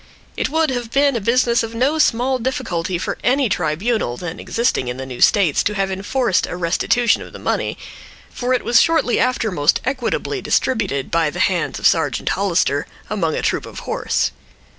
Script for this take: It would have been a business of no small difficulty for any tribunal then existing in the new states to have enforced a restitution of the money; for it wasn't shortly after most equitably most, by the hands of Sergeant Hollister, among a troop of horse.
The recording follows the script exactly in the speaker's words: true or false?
false